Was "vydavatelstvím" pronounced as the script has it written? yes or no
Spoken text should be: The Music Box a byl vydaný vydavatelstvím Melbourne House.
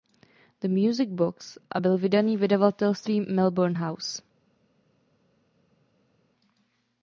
yes